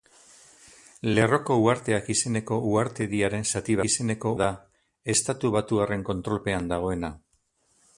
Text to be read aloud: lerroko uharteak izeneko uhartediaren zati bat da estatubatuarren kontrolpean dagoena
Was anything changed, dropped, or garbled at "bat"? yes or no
yes